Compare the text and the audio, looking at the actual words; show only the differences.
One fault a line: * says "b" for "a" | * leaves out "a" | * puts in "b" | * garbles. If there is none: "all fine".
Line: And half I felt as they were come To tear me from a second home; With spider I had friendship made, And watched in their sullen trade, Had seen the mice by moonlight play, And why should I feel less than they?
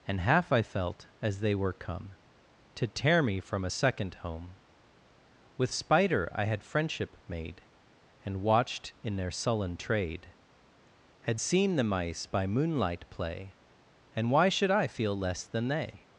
all fine